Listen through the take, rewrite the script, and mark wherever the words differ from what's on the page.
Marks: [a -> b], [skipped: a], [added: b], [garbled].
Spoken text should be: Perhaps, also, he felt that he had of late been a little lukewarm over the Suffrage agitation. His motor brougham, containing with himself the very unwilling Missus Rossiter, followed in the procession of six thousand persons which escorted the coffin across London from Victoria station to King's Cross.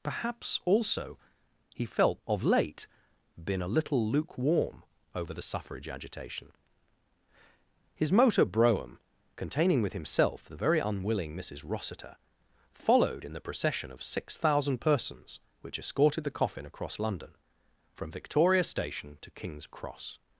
Perhaps, also, he felt [skipped: that he had] of late been a little lukewarm over the Suffrage agitation. His motor brougham, containing with himself the very unwilling Missus Rossiter, followed in the procession of six thousand persons which escorted the coffin across London from Victoria station to King's Cross.